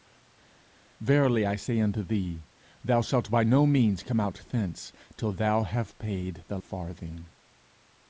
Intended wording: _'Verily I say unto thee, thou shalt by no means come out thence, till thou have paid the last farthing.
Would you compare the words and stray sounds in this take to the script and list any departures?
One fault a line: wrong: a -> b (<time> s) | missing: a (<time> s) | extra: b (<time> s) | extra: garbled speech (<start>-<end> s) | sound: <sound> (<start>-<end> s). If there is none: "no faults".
missing: last (6.6 s)